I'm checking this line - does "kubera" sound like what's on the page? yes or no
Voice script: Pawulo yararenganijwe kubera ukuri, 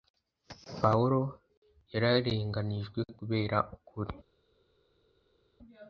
yes